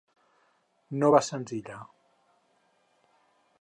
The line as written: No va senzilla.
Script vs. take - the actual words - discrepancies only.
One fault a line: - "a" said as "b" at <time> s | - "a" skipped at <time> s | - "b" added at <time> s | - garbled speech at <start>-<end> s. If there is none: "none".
none